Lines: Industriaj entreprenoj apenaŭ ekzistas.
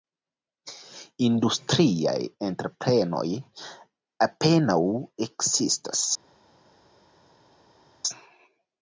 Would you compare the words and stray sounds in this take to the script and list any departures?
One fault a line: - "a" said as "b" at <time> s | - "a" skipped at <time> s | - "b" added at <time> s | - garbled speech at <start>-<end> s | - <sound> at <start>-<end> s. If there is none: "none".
none